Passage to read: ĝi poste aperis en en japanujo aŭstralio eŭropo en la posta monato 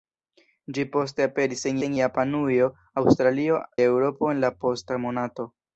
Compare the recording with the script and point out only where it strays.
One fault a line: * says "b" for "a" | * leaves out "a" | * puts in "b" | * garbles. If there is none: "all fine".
all fine